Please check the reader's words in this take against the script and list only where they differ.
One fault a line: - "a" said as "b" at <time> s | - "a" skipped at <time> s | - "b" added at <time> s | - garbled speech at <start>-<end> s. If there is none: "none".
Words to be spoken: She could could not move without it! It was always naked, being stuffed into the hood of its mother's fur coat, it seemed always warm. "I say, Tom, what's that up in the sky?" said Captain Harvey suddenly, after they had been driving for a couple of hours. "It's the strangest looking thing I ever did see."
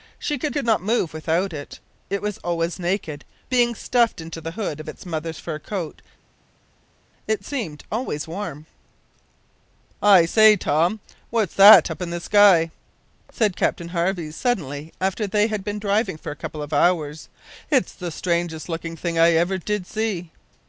none